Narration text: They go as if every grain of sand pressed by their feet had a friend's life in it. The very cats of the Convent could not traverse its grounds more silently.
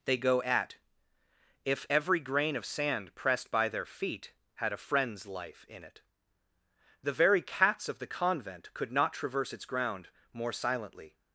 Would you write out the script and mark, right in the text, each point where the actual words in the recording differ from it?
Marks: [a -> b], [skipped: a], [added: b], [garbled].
They go [as -> at] if every grain of sand pressed by their feet had a friend's life in it. The very cats of the Convent could not traverse its [grounds -> ground] more silently.